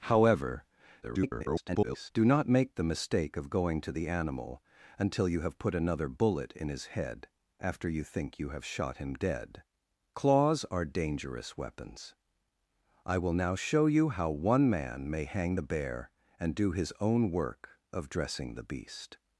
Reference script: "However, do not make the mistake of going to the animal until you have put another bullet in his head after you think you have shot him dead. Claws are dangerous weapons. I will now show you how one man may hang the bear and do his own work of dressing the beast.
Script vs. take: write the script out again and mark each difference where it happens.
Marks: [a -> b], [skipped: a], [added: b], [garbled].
"However, [garbled] do not make the mistake of going to the animal until you have put another bullet in his head after you think you have shot him dead. Claws are dangerous weapons. I will now show you how one man may hang the bear and do his own work of dressing the beast.